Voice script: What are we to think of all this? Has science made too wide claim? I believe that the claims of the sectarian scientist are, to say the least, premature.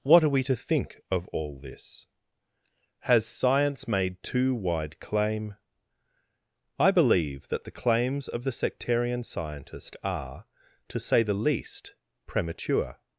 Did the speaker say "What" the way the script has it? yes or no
yes